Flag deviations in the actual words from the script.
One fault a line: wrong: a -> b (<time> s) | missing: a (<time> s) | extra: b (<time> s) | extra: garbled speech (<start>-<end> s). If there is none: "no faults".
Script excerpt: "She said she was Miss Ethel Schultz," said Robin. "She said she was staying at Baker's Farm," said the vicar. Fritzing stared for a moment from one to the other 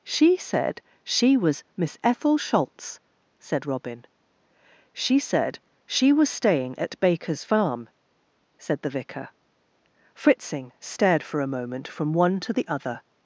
no faults